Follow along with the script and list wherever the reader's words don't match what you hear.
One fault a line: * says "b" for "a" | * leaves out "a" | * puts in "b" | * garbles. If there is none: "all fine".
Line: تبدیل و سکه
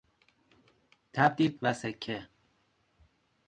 all fine